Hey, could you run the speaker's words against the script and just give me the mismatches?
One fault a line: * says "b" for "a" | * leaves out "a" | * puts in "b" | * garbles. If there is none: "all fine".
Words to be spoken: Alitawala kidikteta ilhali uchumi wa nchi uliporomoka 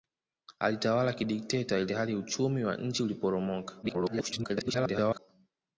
* garbles